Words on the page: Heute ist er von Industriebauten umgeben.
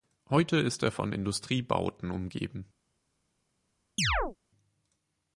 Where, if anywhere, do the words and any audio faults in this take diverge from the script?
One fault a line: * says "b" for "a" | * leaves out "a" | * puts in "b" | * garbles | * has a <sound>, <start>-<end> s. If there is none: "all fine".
* has a chirp, 4.0-4.4 s